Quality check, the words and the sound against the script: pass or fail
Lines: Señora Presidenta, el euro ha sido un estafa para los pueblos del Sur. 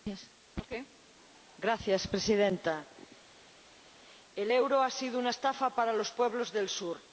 fail